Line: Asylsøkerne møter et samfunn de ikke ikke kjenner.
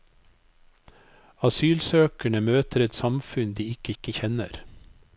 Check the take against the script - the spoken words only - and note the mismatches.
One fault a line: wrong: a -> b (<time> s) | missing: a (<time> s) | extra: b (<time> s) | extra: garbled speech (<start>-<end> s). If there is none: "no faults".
no faults